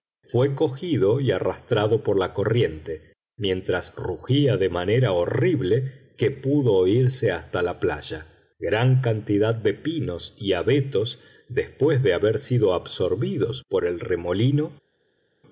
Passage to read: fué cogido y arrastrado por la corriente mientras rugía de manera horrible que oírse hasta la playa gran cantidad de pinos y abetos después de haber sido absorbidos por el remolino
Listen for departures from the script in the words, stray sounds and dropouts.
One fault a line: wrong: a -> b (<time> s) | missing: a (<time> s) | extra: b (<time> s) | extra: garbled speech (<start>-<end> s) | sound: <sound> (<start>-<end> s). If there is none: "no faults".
extra: pudo (6.3 s)